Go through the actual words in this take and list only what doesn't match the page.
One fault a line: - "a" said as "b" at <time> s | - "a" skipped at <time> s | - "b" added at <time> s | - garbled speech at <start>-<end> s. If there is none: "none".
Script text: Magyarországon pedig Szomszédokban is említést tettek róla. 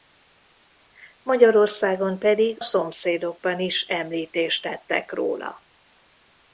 none